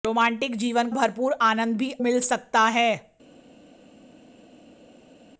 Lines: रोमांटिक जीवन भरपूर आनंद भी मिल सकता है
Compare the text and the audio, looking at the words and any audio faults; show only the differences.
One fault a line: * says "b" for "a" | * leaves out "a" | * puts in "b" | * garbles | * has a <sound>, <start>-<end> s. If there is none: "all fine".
all fine